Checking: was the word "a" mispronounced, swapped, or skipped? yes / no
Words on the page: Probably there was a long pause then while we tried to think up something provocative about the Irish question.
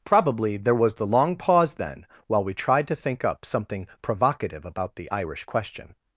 yes